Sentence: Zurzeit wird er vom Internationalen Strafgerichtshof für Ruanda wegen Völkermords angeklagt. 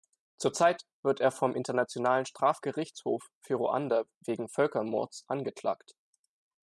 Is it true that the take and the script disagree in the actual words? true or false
false